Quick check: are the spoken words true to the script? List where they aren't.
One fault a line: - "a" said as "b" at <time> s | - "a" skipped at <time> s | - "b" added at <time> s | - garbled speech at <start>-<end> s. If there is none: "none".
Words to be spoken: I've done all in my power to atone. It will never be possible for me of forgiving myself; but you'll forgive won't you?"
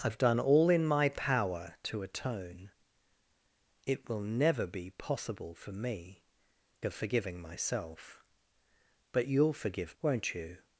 none